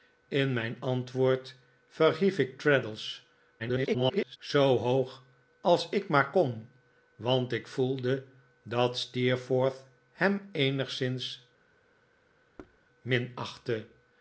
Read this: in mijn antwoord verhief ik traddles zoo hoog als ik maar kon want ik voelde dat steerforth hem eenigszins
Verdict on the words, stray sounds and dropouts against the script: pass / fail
fail